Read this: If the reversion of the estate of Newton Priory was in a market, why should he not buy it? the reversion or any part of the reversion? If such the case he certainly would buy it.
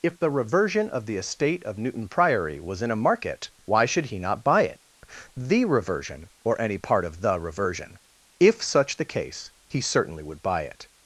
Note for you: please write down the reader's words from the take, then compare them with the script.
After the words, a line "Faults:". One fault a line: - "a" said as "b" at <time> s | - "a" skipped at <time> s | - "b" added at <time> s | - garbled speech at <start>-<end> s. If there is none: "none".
If the reversion of the estate of Newton Priory was in a market, why should he not buy it? the reversion or any part of the reversion? If such the case he certainly would buy it.
Faults:
none